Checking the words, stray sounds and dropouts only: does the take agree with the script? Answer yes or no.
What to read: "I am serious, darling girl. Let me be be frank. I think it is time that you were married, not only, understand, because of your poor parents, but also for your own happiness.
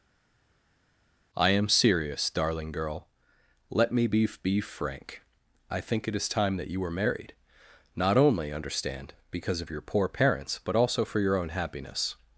yes